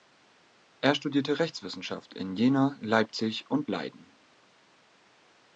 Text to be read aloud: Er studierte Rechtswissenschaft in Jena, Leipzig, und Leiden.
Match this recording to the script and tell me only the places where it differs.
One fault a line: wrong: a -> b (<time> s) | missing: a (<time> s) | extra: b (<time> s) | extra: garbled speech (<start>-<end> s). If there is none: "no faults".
no faults